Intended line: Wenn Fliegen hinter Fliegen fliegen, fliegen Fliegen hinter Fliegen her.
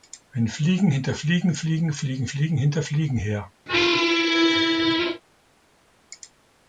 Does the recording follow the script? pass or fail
pass